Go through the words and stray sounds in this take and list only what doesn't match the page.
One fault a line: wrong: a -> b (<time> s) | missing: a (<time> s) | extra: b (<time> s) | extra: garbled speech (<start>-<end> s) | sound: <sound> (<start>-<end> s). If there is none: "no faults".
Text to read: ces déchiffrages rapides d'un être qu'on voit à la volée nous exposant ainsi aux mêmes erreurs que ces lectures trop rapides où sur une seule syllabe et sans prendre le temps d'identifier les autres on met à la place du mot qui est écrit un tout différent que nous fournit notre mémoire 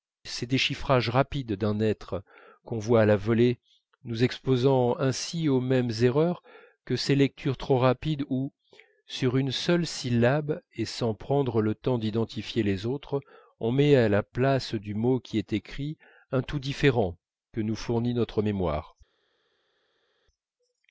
no faults